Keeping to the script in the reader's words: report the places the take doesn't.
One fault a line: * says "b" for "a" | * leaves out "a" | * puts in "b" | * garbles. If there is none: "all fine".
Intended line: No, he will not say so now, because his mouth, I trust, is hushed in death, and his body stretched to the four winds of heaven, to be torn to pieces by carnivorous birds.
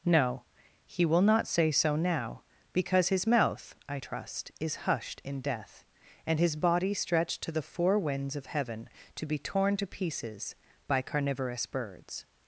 all fine